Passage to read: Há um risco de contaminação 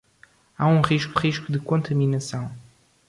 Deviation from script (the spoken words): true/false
true